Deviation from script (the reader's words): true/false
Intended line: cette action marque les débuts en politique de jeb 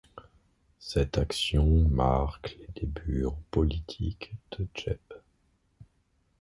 false